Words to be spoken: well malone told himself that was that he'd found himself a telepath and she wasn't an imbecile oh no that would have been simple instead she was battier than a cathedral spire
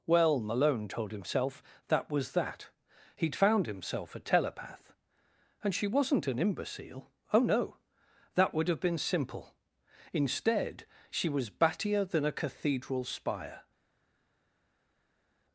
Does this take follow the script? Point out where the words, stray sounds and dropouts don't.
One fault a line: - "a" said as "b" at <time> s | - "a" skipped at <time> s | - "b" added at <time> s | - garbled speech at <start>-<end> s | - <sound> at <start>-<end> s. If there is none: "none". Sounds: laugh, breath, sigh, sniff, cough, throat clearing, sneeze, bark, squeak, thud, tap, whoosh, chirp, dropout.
none